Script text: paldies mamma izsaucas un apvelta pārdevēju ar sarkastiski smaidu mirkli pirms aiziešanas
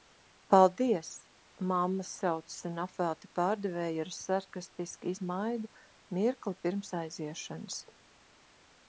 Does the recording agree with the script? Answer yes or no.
yes